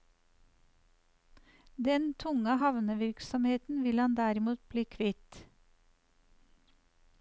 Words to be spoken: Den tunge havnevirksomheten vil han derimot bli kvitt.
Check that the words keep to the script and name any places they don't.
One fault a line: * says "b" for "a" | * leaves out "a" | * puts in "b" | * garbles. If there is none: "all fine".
all fine